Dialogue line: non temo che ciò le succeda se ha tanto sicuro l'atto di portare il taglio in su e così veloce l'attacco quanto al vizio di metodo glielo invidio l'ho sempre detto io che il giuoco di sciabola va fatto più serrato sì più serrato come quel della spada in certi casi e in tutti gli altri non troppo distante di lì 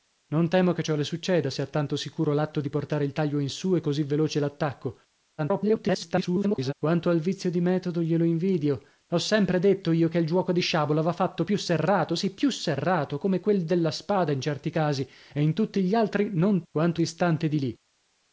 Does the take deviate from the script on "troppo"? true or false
true